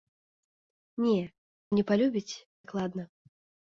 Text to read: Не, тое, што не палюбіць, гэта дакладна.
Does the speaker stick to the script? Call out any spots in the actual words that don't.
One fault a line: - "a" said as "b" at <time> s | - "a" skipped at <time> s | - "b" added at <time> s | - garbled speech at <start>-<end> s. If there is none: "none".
- "тое што" skipped at 1.2 s
- "гэта" skipped at 2.3 s